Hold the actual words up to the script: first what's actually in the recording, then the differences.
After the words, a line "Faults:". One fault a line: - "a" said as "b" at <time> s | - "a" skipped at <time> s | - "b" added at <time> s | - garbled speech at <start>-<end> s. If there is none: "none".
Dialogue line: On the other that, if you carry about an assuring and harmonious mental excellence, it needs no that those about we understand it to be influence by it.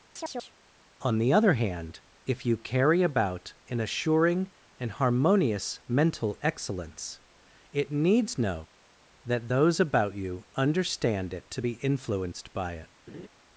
On the other hand, if you carry about an assuring and harmonious mental excellence, it needs no that those about you understand it to be influenced by it.
Faults:
- "that" said as "hand" at 1.5 s
- "we" said as "you" at 10.1 s
- "influence" said as "influenced" at 11.8 s